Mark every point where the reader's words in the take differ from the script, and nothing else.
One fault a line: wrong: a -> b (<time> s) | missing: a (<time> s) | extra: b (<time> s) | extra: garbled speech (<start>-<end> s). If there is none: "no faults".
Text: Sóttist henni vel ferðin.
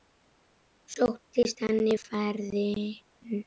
missing: vel (1.9 s)